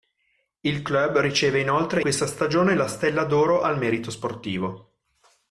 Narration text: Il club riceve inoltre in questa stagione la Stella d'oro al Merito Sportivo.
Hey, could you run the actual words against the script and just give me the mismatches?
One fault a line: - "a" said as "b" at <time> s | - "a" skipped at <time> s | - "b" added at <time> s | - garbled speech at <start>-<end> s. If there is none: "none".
- "in" skipped at 2.0 s